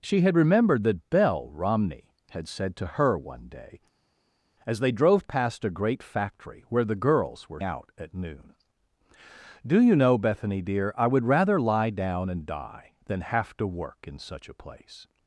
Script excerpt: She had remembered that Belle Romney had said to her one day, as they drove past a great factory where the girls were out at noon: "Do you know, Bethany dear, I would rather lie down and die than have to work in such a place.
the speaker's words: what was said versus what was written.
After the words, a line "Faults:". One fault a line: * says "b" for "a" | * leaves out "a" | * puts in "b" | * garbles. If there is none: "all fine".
She had remembered that Belle Romney had said to her one day, as they drove past a great factory where the girls were out at noon: "Do you know, Bethany dear, I would rather lie down and die than have to work in such a place.
Faults:
all fine